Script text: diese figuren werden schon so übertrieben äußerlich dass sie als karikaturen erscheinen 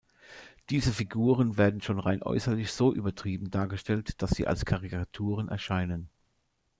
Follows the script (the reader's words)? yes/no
no